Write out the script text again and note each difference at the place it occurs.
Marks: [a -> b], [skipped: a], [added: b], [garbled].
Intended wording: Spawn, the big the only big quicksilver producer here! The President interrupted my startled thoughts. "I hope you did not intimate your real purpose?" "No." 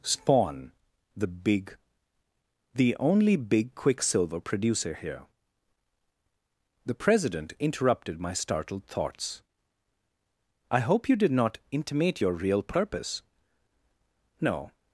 Spawn, the big the only big quicksilver producer here! The President interrupted my startled thoughts. "I hope you did not intimate your real purpose?" "No."